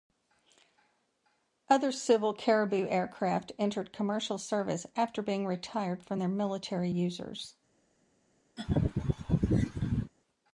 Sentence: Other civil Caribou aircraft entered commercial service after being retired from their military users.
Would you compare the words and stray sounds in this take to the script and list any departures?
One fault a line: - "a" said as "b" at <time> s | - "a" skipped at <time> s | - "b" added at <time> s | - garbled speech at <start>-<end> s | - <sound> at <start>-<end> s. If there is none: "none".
- laugh at 8.6-10.1 s